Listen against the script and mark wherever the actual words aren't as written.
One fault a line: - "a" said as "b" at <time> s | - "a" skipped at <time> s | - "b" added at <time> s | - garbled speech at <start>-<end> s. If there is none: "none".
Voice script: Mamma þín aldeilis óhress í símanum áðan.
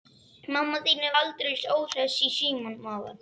none